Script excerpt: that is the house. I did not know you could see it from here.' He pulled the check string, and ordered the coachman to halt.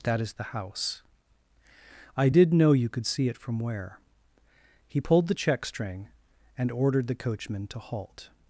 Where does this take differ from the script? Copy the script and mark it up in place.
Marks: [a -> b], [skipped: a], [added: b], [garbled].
that is the house. I did [skipped: not] know you could see it from [here.' -> where] He pulled the check string, and ordered the coachman to halt.